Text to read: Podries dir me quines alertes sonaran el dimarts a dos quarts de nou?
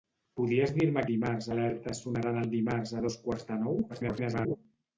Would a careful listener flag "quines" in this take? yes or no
yes